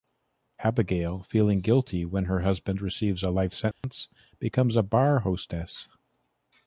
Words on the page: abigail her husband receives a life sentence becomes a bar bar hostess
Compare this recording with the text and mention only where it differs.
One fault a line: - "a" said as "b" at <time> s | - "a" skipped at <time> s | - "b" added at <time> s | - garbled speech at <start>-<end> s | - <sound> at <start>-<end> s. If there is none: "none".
- "feeling guilty when" added at 1.3 s
- dropout at 3.7-3.8 s
- "bar" skipped at 5.2 s